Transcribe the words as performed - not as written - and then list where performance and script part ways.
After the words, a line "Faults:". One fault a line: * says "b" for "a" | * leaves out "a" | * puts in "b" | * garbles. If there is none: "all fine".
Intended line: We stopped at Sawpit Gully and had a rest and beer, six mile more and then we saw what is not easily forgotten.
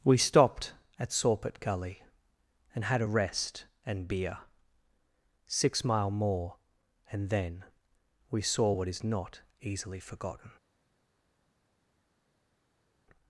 We stopped at Sawpit Gully and had a rest and beer, six mile more and then we saw what is not easily forgotten.
Faults:
all fine